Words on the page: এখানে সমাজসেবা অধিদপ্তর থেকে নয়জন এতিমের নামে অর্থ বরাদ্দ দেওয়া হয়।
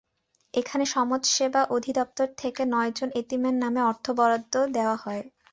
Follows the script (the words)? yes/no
yes